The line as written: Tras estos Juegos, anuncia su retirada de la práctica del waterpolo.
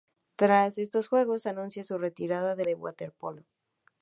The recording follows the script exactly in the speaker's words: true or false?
false